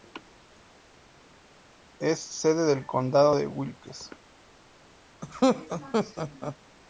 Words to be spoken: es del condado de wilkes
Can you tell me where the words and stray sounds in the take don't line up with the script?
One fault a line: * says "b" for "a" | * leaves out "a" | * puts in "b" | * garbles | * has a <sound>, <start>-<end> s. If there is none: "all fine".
* puts in "sede"
* has a laugh, 5.2-6.6 s